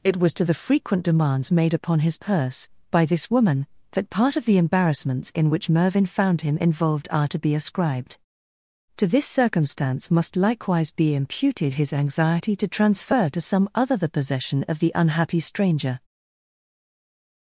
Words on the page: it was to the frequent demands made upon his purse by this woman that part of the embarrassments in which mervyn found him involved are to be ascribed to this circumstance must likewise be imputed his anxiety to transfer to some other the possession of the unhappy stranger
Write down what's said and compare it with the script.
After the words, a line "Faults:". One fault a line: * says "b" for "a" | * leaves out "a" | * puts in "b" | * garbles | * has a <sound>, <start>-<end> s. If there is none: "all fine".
it was to the frequent demands made upon his purse by this woman that part of the embarrassments in which mervyn found him involved are to be ascribed to this circumstance must likewise be imputed his anxiety to transfer to some other the possession of the unhappy stranger
Faults:
all fine